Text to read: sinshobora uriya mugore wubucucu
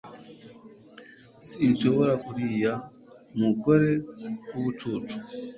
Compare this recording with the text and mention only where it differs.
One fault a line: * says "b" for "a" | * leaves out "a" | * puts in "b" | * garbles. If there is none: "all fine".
all fine